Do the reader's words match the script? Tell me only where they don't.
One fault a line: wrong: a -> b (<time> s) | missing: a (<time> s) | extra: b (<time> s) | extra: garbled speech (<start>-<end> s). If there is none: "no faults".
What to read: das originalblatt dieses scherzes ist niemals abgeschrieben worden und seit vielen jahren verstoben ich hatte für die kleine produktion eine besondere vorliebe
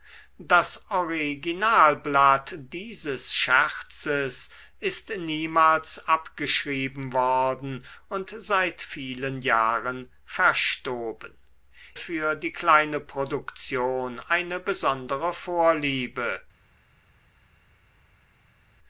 missing: ich hatte (11.4 s)